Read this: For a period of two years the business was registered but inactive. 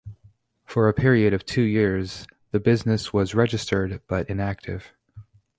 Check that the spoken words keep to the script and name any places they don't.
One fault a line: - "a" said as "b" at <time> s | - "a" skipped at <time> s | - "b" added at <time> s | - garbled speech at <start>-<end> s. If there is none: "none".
none